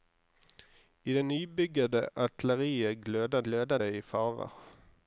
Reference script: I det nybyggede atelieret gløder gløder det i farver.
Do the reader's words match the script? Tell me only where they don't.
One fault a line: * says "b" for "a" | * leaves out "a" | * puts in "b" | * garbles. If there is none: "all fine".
all fine